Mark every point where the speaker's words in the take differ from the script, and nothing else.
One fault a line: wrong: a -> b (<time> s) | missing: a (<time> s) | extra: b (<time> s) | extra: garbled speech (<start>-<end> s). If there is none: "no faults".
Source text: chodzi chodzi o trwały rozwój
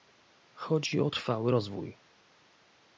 missing: chodzi (1.0 s)